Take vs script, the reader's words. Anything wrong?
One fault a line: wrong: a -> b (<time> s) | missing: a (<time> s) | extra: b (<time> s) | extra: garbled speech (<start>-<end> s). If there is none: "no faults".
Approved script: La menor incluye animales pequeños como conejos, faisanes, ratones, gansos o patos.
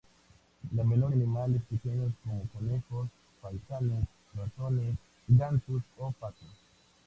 missing: incluye (1.1 s)